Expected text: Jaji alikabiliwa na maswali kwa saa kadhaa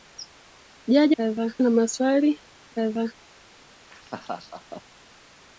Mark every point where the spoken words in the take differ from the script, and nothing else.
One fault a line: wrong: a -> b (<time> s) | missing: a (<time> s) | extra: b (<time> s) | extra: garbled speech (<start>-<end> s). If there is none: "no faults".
wrong: alikabiliwa -> kadhaa (1.1 s)
missing: kwa saa (2.4 s)